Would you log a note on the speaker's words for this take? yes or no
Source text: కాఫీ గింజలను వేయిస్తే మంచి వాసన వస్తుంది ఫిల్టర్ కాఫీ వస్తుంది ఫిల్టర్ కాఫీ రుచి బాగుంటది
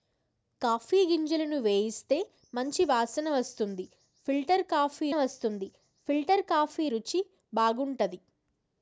no